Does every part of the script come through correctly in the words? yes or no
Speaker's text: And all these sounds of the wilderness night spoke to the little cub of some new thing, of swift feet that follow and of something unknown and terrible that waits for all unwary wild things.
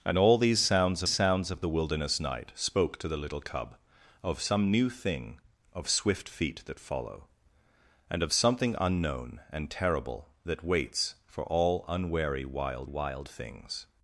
no